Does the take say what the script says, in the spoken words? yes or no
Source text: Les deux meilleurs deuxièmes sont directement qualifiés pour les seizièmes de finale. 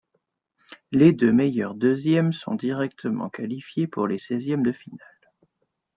yes